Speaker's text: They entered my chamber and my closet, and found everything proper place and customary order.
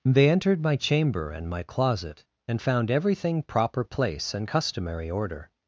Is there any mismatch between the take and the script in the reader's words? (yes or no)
no